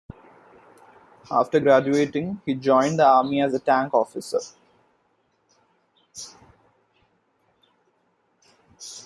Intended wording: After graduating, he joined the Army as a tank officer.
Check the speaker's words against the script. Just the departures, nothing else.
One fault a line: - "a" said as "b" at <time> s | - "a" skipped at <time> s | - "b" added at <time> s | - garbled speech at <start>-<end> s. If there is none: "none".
none